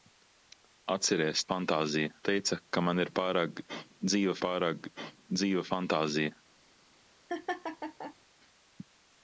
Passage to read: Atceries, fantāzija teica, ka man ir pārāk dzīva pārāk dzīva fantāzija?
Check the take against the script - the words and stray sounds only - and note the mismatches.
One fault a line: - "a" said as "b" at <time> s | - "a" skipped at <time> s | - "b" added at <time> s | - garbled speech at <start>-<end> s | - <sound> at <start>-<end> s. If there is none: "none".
- laugh at 7.3-8.2 s